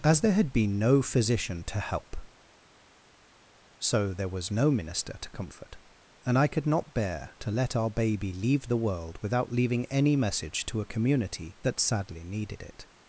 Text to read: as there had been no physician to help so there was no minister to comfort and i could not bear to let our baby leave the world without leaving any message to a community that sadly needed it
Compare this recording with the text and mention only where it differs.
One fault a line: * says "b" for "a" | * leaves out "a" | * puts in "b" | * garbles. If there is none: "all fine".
all fine